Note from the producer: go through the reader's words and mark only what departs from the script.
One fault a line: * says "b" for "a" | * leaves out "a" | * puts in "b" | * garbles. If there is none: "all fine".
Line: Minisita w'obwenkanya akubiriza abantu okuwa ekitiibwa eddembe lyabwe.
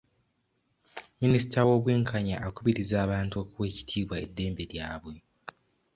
all fine